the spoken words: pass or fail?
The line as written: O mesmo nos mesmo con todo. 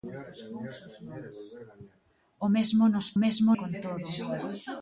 pass